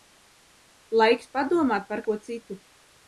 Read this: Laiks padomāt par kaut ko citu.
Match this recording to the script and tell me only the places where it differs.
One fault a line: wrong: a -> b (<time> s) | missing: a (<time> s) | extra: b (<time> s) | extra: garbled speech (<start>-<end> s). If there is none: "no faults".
missing: kaut (2.0 s)